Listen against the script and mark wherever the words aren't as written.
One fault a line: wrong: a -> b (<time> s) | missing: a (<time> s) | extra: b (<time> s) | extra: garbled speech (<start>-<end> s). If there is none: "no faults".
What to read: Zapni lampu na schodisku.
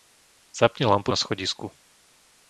no faults